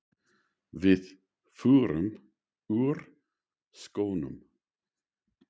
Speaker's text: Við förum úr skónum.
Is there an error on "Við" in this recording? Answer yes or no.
no